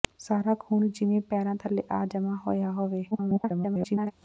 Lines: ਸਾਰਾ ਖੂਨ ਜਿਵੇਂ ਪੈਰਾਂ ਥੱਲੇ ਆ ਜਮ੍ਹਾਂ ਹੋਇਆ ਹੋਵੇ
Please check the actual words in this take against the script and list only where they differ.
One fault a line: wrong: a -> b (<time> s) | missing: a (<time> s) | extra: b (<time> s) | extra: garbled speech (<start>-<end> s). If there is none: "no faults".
extra: garbled speech (3.1-4.1 s)